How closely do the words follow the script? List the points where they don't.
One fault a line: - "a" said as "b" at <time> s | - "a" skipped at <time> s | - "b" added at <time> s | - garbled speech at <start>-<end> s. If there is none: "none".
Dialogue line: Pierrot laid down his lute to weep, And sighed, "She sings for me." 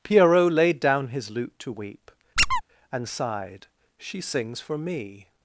none